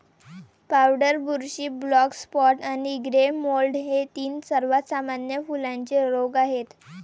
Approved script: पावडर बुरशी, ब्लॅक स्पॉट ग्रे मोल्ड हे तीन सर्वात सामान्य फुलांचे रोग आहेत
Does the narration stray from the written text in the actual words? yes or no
yes